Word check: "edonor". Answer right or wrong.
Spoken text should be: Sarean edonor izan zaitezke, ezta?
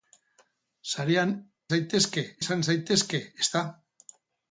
wrong